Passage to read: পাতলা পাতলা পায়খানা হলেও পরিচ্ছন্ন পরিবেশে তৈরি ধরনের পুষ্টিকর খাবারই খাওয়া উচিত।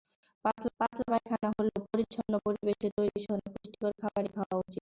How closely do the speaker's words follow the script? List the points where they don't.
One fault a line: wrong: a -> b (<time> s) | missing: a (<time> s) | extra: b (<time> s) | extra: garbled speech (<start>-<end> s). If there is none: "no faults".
no faults